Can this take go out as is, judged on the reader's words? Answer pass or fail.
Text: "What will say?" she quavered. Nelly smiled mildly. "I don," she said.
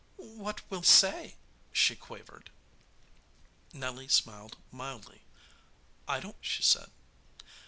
pass